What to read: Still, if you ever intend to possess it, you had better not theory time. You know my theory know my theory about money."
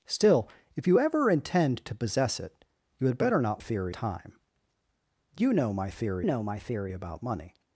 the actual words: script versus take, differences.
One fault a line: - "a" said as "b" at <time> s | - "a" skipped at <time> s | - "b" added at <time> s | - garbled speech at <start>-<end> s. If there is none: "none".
none